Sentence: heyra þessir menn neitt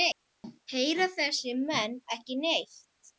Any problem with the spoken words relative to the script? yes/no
yes